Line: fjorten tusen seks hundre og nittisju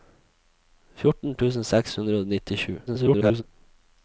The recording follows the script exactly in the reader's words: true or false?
false